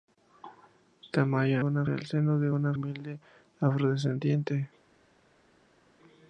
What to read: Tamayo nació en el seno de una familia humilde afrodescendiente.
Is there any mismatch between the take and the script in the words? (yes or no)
yes